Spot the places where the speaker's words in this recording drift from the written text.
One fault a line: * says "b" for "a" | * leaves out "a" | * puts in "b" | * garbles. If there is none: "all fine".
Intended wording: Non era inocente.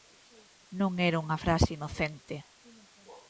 * puts in "unha frase"